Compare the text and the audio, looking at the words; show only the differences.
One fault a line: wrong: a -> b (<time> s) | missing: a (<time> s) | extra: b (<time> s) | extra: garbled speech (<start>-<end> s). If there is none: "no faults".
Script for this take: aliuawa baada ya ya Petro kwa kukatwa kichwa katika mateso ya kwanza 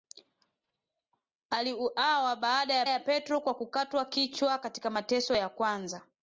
no faults